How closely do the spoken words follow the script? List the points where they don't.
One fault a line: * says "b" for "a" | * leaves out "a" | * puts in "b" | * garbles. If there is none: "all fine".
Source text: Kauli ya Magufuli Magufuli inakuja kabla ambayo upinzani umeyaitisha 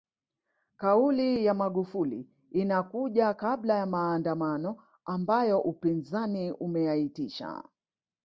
* leaves out "Magufuli"
* puts in "ya maandamano"